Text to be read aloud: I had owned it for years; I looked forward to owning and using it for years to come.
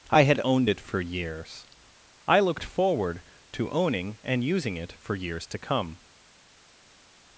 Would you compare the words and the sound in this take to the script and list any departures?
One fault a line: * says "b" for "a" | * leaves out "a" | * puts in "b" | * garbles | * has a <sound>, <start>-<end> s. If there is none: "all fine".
all fine